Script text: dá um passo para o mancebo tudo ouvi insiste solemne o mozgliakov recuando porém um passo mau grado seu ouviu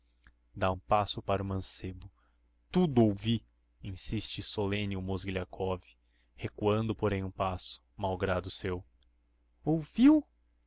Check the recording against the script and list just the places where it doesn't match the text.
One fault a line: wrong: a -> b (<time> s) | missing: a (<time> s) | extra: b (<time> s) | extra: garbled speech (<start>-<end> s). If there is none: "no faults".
no faults